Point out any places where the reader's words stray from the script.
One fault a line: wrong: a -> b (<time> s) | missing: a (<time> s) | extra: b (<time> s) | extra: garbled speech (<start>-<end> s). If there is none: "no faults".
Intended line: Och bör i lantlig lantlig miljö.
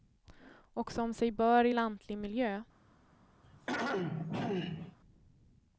extra: som sig (0.9 s)
missing: lantlig (2.2 s)